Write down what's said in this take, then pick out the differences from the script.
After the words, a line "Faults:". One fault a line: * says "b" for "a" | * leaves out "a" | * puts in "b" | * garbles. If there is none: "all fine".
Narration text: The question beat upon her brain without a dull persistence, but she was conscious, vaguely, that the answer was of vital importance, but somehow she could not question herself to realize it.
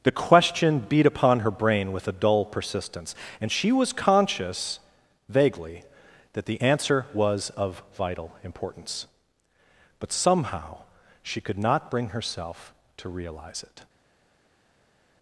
The question beat upon her brain with a dull persistence, and she was conscious, vaguely, that the answer was of vital importance, but somehow she could not bring herself to realize it.
Faults:
* says "with" for "without"
* says "and" for "but"
* says "bring" for "question"